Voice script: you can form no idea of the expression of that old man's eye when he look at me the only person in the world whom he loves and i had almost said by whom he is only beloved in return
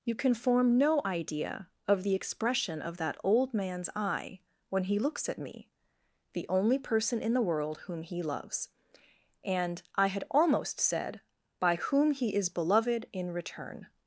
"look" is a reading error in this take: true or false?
true